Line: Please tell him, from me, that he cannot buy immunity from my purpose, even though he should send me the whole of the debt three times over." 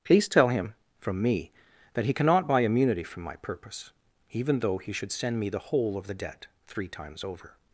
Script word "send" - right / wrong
right